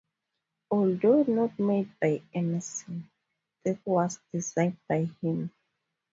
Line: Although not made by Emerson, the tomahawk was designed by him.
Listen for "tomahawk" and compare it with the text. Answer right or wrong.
wrong